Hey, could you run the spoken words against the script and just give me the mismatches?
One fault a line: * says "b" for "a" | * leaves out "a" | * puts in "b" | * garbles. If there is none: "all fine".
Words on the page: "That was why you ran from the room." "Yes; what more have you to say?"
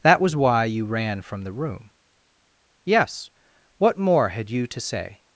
* says "had" for "have"